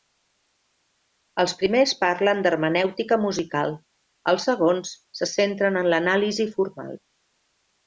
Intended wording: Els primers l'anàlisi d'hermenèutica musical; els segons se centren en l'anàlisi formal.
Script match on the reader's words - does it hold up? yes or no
no